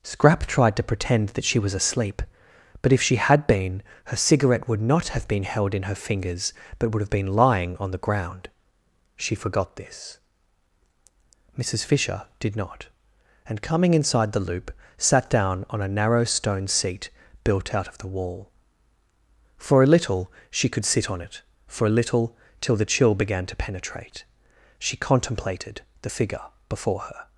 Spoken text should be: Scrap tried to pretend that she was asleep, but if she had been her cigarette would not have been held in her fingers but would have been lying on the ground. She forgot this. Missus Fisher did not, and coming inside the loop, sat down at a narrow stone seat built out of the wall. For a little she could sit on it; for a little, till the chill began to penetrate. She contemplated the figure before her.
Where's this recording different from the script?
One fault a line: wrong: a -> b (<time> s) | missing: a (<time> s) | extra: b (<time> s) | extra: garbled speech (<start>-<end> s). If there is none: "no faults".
wrong: at -> on (15.7 s)